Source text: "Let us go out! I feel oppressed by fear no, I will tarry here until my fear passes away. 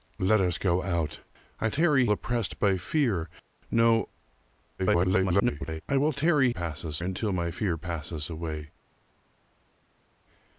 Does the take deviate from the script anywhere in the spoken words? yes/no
yes